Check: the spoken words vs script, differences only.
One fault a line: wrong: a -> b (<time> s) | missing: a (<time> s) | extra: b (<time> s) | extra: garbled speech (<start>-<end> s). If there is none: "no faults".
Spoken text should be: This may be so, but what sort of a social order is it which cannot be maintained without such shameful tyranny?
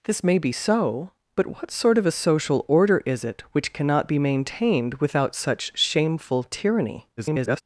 extra: garbled speech (7.2-7.6 s)